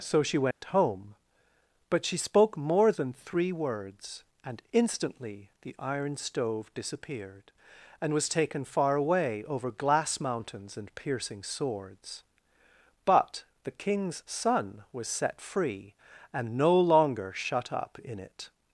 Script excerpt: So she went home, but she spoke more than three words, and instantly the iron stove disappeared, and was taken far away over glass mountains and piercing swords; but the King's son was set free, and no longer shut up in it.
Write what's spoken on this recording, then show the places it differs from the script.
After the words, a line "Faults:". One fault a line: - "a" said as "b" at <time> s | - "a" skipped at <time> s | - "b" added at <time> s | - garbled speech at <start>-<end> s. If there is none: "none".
So she went home, but she spoke more than three words, and instantly the iron stove disappeared, and was taken far away over glass mountains and piercing swords; but the King's son was set free, and no longer shut up in it.
Faults:
none